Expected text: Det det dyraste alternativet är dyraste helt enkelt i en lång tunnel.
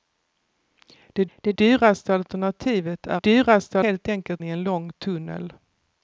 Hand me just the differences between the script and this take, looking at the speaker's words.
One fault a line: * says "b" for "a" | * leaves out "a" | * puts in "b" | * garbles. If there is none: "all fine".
all fine